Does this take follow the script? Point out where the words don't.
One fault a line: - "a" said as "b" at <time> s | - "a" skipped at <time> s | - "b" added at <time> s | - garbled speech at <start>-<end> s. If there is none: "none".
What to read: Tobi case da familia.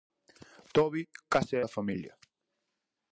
none